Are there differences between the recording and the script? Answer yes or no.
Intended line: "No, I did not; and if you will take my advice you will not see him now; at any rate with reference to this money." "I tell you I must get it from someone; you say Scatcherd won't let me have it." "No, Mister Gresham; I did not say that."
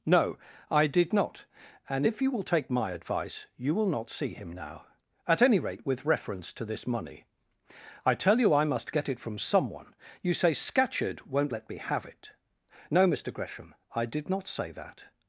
no